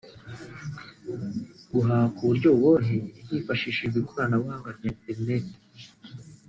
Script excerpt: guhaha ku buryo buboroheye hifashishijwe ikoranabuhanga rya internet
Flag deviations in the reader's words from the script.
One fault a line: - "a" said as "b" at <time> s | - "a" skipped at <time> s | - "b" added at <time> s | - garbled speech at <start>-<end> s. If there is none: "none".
none